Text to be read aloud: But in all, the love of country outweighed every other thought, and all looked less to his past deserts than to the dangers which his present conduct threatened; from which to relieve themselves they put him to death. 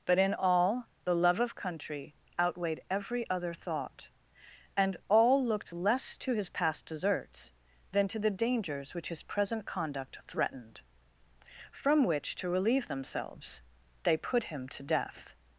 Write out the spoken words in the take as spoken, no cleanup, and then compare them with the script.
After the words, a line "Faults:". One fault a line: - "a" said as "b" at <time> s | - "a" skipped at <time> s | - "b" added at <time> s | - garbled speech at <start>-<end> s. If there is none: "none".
But in all, the love of country outweighed every other thought, and all looked less to his past deserts than to the dangers which his present conduct threatened; from which to relieve themselves they put him to death.
Faults:
none